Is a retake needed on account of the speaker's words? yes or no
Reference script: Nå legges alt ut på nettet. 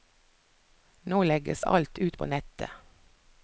no